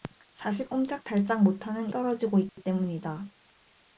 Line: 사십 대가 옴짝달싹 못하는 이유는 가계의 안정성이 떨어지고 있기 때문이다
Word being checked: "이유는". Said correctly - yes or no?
no